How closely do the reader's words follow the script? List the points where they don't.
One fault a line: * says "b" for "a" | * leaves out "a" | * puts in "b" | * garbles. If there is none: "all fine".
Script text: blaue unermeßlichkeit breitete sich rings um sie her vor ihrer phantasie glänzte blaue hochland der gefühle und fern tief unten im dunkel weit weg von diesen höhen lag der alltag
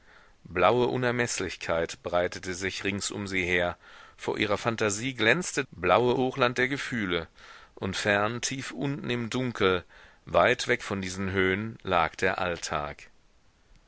all fine